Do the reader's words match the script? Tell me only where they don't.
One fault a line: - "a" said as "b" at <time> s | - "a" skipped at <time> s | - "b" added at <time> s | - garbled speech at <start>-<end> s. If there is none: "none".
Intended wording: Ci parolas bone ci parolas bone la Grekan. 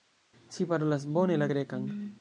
- "ci parolas bone" skipped at 1.4 s